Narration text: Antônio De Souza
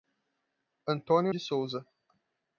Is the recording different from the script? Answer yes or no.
no